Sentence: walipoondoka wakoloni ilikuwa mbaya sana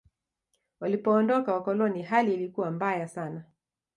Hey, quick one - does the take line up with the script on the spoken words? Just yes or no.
no